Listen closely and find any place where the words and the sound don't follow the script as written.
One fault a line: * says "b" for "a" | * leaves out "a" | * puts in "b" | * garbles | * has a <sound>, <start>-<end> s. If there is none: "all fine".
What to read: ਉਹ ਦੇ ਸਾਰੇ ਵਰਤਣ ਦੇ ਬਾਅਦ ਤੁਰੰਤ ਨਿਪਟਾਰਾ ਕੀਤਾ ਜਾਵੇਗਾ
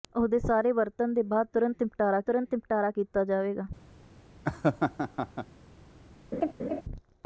* puts in "ਤੁਰੰਤ ਨਿਪਟਾਰਾ"
* has a laugh, 4.4-5.5 s
* has a laugh, 6.3-6.8 s